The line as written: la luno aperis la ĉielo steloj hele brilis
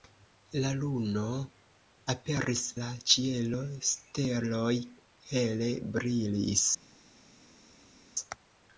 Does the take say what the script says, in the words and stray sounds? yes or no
yes